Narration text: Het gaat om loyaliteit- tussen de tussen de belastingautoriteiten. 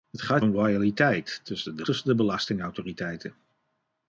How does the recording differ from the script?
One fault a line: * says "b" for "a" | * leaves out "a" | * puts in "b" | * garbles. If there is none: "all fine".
all fine